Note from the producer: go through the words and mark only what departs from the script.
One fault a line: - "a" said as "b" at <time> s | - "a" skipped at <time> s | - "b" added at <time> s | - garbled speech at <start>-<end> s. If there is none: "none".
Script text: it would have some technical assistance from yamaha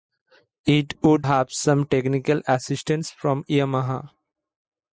none